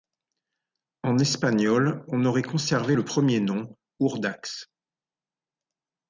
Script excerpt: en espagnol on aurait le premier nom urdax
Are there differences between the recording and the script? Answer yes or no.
yes